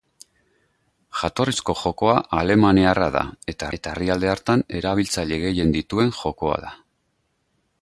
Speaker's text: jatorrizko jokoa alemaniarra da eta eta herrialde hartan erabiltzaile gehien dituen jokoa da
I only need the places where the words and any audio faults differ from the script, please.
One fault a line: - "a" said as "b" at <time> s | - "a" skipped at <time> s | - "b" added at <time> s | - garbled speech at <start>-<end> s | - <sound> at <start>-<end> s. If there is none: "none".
none